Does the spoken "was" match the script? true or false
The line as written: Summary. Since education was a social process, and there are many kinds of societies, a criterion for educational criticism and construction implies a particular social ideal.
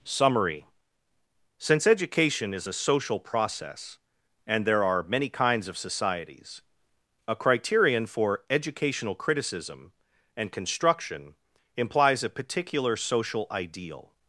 false